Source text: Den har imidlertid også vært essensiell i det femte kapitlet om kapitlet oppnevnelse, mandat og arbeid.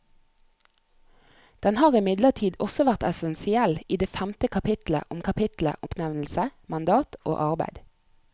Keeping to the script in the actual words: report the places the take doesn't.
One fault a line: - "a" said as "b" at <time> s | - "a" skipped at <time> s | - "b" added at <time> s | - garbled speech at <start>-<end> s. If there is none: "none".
none